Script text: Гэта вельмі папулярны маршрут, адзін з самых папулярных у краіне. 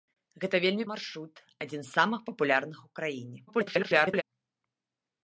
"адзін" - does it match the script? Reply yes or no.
yes